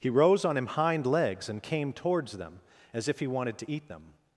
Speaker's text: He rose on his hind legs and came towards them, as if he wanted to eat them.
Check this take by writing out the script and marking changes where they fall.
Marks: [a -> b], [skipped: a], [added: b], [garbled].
He rose on [his -> him] hind legs and came towards them, as if he wanted to eat them.